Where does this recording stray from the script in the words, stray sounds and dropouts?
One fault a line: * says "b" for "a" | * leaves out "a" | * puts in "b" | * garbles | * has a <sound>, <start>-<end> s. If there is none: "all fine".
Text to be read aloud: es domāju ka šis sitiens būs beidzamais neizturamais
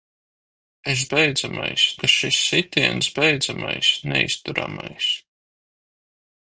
* says "beidzamais" for "domāju"
* leaves out "būs"